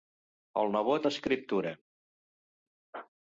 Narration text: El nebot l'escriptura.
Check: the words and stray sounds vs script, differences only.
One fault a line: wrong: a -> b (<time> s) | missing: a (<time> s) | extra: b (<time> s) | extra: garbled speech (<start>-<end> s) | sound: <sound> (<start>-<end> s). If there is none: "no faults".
no faults